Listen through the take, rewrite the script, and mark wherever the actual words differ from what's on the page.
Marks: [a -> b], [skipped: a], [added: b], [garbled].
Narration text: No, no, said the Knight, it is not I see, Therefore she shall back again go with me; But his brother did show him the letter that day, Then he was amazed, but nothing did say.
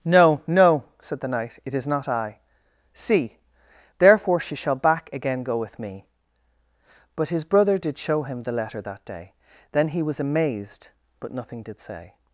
No, no, said the Knight, it is not I see, Therefore she shall back again go with me; But his brother did show him the letter that day, Then he was amazed, but nothing did say.